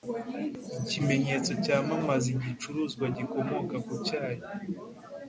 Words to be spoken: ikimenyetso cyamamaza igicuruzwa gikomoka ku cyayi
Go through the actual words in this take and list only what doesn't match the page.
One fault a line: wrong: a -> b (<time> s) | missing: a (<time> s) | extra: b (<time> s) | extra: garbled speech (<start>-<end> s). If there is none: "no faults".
no faults